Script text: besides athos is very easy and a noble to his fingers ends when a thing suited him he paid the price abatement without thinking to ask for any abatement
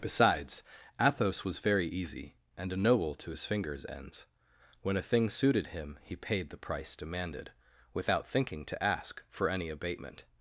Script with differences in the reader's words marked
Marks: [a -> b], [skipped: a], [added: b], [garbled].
besides athos [is -> was] very easy and a noble to his fingers ends when a thing suited him he paid the price [abatement -> demanded] without thinking to ask for any abatement